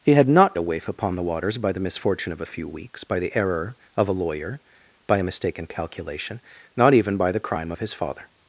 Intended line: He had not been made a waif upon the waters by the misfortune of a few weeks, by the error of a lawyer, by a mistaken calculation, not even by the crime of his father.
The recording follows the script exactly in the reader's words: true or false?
false